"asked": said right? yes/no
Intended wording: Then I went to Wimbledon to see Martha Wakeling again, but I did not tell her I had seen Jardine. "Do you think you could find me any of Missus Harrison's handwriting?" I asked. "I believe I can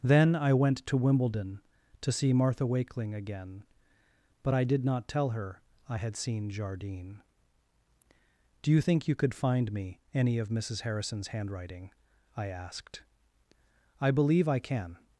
yes